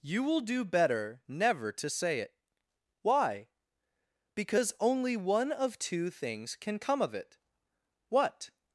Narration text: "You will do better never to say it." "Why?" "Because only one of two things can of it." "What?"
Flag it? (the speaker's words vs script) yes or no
yes